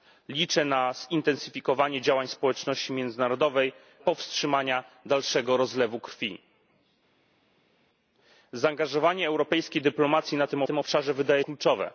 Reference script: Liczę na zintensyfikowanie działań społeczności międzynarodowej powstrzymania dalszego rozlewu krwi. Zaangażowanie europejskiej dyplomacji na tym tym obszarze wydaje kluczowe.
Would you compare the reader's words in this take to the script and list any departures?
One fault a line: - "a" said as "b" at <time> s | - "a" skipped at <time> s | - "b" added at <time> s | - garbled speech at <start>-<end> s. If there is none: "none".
none